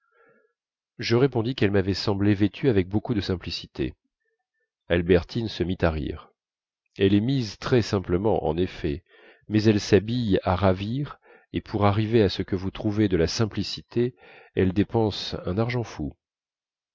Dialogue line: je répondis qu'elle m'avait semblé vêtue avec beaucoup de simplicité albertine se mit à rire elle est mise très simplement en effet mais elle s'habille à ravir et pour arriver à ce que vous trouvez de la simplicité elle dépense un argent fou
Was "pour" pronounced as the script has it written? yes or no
yes